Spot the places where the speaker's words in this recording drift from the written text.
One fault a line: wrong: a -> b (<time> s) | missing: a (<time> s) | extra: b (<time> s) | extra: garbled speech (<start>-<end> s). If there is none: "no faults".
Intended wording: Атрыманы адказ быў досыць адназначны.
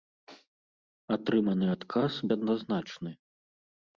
missing: быў досыць (2.1 s)